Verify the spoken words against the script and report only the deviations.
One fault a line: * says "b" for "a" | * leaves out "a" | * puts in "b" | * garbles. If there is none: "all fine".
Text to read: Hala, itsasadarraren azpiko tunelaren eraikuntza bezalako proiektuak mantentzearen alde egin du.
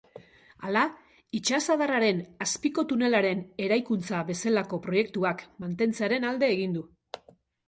all fine